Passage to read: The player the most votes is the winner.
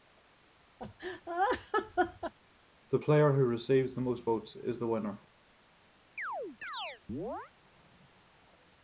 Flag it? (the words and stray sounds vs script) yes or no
yes